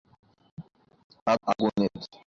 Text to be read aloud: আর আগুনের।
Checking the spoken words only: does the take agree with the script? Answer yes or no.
yes